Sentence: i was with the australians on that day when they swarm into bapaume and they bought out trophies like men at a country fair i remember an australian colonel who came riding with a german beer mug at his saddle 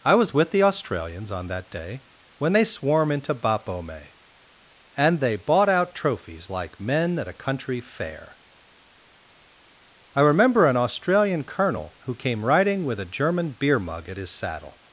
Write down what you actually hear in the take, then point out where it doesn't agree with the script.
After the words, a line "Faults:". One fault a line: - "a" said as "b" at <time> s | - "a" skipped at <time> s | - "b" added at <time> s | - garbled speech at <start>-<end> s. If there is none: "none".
i was with the australians on that day when they swarm into bapaume and they bought out trophies like men at a country fair i remember an australian colonel who came riding with a german beer mug at his saddle
Faults:
none